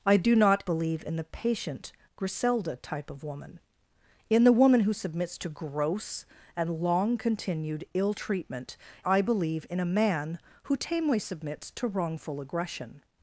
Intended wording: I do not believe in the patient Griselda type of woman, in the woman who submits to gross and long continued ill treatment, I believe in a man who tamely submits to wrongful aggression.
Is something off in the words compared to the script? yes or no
no